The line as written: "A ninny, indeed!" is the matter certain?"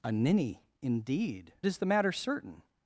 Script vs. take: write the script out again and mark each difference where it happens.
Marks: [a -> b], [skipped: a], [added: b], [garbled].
"A ninny, indeed!" is the matter certain?"